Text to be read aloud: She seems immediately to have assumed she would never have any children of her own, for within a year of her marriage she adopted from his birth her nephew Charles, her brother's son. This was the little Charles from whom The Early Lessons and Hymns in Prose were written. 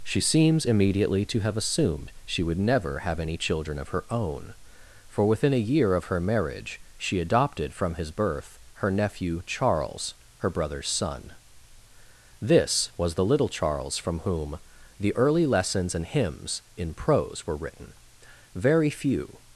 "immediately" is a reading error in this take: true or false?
false